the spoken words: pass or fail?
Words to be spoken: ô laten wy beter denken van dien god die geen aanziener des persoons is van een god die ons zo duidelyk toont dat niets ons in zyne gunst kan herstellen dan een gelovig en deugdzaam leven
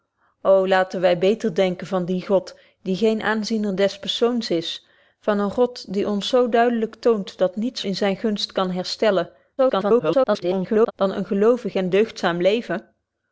fail